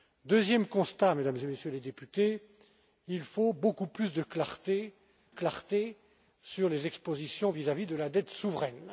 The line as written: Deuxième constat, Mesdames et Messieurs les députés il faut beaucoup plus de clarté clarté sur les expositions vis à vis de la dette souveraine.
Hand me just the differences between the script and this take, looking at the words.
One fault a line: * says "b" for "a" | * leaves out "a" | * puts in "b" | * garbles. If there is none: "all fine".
all fine